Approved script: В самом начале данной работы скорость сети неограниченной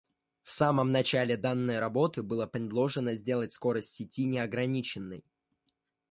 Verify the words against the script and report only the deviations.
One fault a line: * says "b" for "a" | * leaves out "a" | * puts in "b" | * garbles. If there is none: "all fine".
* puts in "было предложено сделать"